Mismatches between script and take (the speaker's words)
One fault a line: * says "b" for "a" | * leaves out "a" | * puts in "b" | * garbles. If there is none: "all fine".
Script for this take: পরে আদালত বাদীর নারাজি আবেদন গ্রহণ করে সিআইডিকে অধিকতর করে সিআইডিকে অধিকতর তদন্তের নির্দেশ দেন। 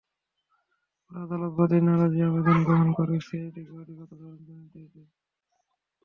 * leaves out "করে সিআইডিকে অধিকতর"